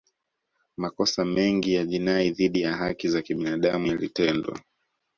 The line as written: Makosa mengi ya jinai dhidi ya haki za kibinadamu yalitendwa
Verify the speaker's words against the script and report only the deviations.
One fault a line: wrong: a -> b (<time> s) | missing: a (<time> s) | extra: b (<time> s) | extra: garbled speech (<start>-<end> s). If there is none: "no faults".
no faults